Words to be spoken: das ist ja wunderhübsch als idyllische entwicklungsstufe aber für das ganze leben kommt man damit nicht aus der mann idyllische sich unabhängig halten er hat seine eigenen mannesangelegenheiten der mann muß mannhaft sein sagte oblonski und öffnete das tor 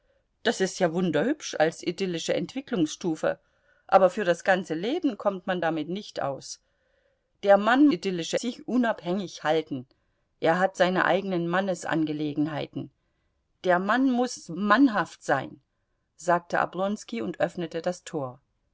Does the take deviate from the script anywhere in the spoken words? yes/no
no